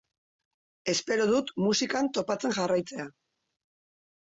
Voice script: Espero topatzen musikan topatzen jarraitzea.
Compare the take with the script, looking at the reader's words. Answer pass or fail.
fail